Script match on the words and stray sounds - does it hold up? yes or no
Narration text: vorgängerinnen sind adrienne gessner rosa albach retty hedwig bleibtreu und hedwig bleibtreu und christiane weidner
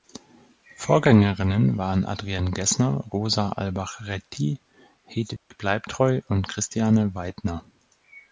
no